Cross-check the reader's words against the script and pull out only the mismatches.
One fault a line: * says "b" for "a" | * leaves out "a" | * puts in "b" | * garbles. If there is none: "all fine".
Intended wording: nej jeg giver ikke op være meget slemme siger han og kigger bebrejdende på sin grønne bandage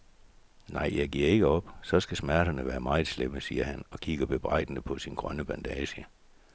* puts in "så skal smerterne"